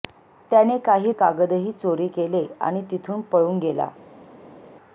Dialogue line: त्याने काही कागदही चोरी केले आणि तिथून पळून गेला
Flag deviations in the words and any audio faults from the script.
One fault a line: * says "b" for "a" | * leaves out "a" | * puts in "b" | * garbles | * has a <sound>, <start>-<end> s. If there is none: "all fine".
all fine